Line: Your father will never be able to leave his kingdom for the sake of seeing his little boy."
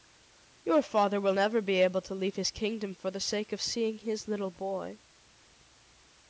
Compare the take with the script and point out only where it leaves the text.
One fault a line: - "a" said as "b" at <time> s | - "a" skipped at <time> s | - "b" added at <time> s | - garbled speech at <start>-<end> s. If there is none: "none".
none